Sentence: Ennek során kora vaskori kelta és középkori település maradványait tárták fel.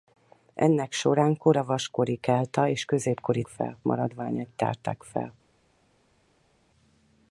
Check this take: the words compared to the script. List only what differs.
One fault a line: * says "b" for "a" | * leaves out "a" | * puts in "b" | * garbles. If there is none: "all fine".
* says "fel" for "település"